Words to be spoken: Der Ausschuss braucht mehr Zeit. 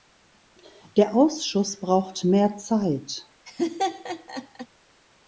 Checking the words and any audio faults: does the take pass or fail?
fail